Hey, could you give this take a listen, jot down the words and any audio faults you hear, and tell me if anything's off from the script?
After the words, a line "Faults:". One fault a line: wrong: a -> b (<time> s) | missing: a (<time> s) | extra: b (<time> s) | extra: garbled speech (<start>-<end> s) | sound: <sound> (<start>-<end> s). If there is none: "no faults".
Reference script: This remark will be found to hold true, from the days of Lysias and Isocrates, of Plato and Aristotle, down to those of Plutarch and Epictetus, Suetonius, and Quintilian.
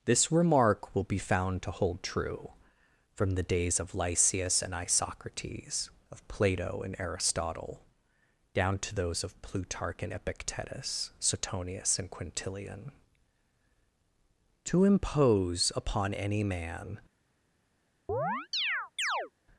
This remark will be found to hold true, from the days of Lysias and Isocrates, of Plato and Aristotle, down to those of Plutarch and Epictetus, Suetonius, and Quintilian. To impose upon any man
Faults:
extra: To impose upon any man (14.6 s)
sound: chirp (18.1-19.3 s)